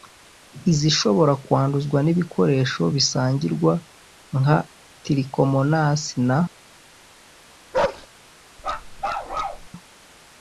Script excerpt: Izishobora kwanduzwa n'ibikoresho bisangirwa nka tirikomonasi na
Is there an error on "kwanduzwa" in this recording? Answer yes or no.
no